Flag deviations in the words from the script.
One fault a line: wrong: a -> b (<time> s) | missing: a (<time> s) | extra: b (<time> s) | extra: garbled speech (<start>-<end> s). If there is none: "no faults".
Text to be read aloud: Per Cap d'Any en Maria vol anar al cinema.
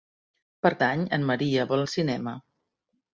missing: Cap (0.7 s)
missing: anar (1.9 s)